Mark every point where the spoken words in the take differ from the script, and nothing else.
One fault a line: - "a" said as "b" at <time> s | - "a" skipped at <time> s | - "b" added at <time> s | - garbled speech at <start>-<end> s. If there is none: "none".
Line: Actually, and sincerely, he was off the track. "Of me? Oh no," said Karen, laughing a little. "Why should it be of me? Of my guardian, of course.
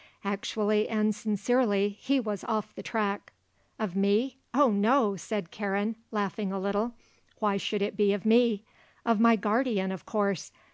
none